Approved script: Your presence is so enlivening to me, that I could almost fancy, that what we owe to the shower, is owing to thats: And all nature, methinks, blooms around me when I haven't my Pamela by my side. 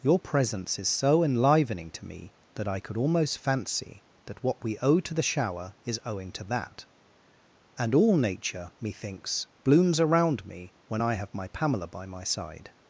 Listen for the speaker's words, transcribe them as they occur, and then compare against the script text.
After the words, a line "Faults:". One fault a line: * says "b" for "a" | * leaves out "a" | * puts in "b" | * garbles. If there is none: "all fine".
Your presence is so enlivening to me, that I could almost fancy, that what we owe to the shower, is owing to that: And all nature, methinks, blooms around me when I have my Pamela by my side.
Faults:
* says "that" for "thats"
* says "have" for "haven't"